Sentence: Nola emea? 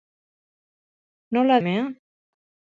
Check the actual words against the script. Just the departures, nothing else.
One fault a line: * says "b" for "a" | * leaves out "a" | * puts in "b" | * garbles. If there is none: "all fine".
all fine